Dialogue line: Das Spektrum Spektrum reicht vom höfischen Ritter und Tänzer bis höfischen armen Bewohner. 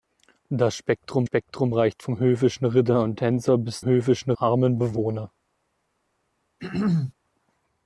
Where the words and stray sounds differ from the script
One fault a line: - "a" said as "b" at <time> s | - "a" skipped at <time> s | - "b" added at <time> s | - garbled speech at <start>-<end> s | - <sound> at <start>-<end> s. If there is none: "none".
- throat clearing at 6.6-7.1 s